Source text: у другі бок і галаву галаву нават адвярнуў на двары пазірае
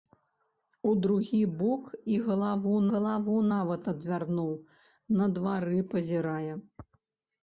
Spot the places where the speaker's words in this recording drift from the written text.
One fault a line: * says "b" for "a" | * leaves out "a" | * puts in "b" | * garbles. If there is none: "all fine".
all fine